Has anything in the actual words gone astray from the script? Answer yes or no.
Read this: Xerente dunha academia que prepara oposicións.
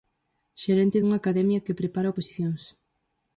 no